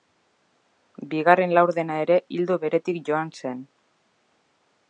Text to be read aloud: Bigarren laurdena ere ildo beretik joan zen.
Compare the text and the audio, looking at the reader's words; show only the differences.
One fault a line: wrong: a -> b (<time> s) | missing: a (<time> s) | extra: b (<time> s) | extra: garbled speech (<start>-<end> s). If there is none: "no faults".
no faults